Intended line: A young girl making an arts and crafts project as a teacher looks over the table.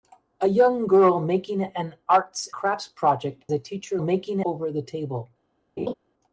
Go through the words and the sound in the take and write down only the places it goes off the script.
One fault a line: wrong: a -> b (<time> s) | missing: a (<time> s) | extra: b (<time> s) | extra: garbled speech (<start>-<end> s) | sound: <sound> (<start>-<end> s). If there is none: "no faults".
missing: and (2.5 s)
missing: as (3.4 s)
wrong: looks -> making (4.0 s)
sound: laugh (5.8-5.9 s)